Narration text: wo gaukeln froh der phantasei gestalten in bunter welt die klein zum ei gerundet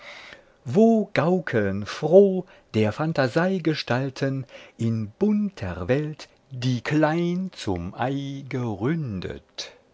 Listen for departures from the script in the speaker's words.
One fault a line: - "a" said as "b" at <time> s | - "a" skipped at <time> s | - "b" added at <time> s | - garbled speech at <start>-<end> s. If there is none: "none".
none